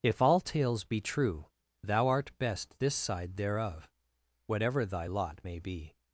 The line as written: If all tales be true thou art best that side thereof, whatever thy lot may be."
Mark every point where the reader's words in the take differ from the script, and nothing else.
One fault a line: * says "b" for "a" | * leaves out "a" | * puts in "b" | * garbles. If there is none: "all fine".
* says "this" for "that"